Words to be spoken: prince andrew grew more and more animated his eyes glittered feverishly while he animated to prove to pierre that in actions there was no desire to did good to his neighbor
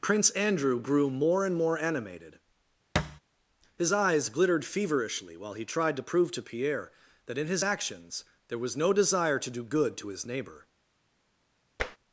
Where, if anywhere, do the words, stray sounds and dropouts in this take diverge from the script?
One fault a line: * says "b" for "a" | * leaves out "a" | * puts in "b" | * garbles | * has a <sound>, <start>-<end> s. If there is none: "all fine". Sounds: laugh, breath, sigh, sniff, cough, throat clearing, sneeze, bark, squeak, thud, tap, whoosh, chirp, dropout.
* has a thud, 3.0-3.2 s
* says "tried" for "animated"
* puts in "his"
* says "do" for "did"
* has a tap, 11.8-12.0 s